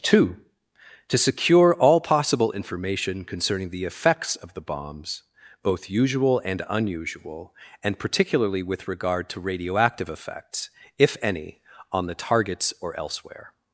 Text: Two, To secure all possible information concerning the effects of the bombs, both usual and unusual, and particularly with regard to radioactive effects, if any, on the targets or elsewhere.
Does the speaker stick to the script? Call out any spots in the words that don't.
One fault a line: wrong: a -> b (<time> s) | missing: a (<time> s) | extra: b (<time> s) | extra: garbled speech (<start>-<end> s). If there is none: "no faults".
no faults